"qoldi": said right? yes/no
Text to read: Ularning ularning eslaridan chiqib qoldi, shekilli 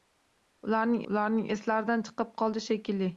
yes